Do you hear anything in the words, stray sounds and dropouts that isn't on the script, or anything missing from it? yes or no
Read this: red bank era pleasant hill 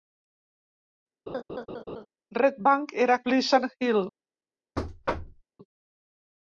yes